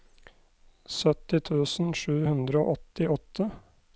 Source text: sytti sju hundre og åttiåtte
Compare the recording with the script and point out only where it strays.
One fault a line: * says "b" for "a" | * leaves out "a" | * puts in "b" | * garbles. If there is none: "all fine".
* puts in "tusen"